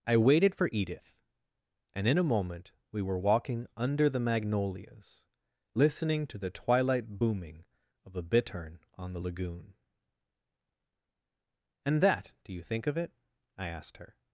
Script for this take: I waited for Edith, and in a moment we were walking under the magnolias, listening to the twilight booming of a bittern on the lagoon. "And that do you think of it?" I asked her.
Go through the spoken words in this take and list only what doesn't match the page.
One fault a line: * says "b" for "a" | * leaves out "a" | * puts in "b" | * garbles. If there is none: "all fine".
all fine